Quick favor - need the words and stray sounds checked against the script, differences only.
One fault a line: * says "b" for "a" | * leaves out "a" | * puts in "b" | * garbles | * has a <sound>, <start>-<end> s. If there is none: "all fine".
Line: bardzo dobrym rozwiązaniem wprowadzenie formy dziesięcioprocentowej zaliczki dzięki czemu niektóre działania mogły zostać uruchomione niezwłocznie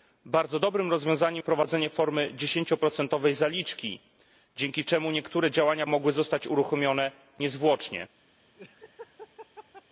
* has a laugh, 8.6-9.8 s